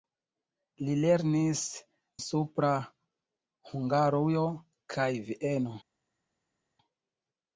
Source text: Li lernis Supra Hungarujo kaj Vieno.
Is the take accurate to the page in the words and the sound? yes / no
yes